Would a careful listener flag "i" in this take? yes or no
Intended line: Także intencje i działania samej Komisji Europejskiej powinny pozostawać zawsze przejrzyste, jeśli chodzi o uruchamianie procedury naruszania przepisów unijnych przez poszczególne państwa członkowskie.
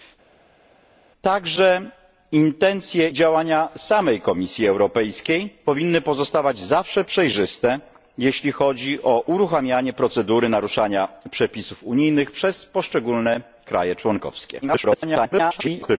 yes